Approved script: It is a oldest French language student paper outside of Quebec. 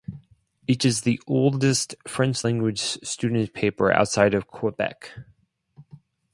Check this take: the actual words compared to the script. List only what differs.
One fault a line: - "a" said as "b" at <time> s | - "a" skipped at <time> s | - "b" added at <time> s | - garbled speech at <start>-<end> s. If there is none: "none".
- "a" said as "the" at 1.0 s